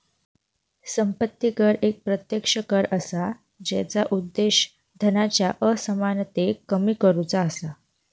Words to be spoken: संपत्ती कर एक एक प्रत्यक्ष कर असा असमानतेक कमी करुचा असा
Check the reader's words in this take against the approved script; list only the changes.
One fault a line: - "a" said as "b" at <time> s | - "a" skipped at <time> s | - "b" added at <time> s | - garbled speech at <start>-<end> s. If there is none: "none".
- "एक" skipped at 2.0 s
- "जेचा उद्देश धनाच्या" added at 3.6 s